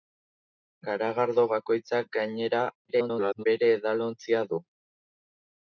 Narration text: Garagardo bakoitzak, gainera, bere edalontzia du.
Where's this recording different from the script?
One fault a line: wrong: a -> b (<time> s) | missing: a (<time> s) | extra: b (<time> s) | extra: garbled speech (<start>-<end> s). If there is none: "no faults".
extra: garbled speech (2.9-3.4 s)